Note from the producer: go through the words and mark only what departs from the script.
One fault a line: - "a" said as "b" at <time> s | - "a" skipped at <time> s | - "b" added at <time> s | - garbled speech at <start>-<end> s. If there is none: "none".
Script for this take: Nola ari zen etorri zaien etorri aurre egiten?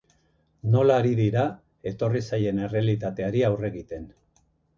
- "zen" said as "dira" at 1.2 s
- "etorri" said as "errealitateari" at 2.7 s